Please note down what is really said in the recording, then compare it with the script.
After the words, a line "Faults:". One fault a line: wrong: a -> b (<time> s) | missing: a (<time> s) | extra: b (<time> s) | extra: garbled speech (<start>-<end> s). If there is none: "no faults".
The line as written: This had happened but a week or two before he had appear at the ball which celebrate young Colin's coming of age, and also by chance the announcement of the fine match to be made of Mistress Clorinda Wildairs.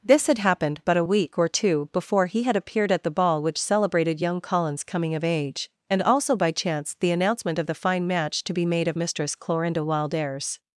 This had happened but a week or two before he had appeared at the ball which celebrated young Colin's coming of age, and also by chance the announcement of the fine match to be made of Mistress Clorinda Wildairs.
Faults:
wrong: appear -> appeared (2.5 s)
wrong: celebrate -> celebrated (3.6 s)